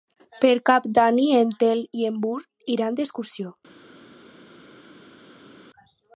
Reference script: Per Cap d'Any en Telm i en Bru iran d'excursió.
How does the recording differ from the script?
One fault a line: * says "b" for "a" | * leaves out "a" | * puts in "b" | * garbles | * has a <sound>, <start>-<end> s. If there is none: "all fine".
all fine